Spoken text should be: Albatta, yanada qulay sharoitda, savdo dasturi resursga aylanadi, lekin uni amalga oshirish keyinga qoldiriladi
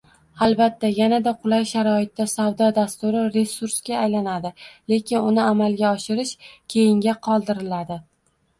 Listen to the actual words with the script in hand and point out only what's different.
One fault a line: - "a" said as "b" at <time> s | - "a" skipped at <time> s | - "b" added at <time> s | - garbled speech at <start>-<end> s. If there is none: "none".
none